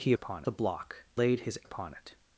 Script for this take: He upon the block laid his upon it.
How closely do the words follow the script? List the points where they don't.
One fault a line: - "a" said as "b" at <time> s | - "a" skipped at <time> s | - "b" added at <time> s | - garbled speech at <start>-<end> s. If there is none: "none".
none